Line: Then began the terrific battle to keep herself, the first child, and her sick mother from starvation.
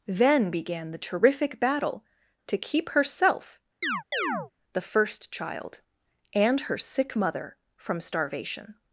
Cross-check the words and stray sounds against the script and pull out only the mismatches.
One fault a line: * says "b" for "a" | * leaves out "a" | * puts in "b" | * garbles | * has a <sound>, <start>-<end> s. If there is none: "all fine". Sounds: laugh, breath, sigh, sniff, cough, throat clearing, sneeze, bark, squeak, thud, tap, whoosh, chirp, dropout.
* has a chirp, 3.8-4.5 s